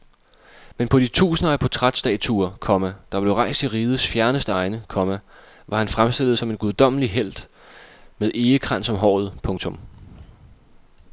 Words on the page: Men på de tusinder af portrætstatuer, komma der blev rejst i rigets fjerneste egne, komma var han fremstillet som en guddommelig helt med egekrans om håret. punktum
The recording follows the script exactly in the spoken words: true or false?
true